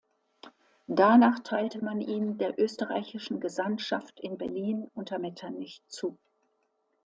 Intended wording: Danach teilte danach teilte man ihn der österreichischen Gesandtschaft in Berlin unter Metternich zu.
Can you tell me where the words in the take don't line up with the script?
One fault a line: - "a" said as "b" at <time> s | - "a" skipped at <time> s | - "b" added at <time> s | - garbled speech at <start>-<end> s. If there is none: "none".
- "danach teilte" skipped at 1.9 s